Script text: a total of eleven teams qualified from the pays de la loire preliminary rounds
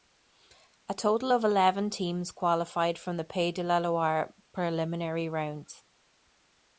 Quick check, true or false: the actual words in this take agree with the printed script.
true